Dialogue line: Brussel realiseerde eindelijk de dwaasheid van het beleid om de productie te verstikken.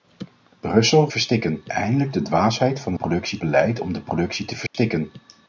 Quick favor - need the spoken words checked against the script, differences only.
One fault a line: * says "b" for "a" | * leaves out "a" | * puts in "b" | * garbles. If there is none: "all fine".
* says "verstikken" for "realiseerde"
* says "productie" for "het"